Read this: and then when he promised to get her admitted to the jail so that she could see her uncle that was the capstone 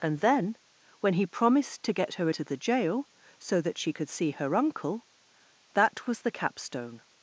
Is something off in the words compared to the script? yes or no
yes